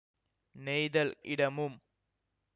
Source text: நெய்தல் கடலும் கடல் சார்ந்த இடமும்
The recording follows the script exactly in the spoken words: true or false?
false